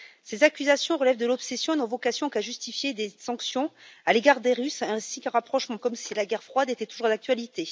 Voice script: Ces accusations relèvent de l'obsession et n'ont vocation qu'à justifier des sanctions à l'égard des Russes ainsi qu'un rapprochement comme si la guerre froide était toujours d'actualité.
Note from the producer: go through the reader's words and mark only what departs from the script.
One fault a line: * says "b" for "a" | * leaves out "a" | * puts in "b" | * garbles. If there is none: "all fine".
all fine